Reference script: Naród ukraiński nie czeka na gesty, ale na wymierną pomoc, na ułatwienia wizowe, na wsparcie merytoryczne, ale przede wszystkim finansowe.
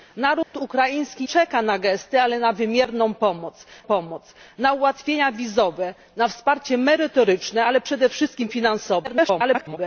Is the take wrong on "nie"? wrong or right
wrong